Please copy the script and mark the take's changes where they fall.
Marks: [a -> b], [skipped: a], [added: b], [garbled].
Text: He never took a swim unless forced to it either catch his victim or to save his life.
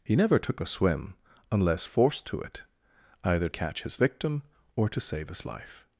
He never took a swim unless forced to it either catch his victim or to save his life.